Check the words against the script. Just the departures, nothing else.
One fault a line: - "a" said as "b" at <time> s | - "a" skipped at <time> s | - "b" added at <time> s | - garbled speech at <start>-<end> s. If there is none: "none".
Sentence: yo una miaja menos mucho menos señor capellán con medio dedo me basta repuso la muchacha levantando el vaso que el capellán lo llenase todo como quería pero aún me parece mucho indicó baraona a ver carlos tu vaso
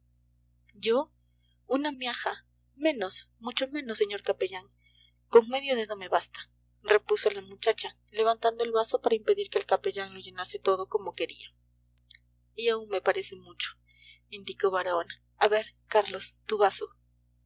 - "para impedir" added at 9.0 s
- "pero" said as "y" at 12.5 s